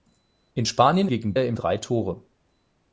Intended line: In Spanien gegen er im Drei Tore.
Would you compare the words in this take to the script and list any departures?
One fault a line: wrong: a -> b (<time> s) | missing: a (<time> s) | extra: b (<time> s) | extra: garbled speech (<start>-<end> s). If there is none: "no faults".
no faults